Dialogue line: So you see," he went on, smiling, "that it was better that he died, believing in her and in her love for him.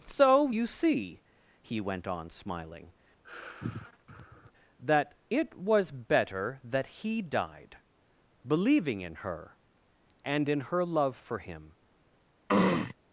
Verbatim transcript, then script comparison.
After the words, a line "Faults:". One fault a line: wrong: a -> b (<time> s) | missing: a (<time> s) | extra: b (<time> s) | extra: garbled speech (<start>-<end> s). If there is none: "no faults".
So you see," he went on, smiling, "that it was better that he died, believing in her and in her love for him.
Faults:
no faults